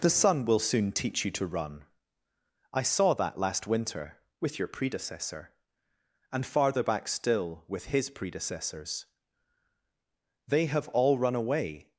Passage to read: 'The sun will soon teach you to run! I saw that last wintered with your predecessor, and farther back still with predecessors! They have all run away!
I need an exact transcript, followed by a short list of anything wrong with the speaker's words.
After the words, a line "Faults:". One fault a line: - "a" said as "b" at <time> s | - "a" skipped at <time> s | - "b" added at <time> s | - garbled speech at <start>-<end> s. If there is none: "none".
'The sun will soon teach you to run! I saw that last winter with your predecessor, and farther back still with his predecessors! They have all run away!
Faults:
- "wintered" said as "winter" at 3.7 s
- "his" added at 7.9 s